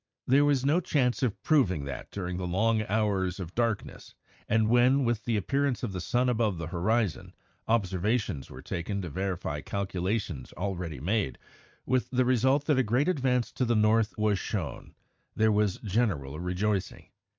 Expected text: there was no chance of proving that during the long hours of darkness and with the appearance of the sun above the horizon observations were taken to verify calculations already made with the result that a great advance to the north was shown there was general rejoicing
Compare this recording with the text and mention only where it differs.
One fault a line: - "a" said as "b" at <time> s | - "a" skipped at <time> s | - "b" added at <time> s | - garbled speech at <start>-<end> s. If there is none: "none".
- "when" added at 4.7 s